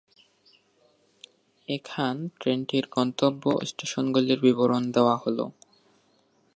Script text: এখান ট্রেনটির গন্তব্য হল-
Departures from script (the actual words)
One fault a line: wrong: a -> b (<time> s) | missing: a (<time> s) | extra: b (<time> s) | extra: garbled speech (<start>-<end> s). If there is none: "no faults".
extra: স্টেশনগুলির বিবরণ দেওয়া (3.7 s)